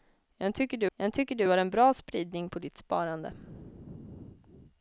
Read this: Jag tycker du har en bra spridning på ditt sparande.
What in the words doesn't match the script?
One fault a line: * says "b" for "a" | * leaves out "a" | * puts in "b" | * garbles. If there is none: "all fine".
* puts in "jag tycker du"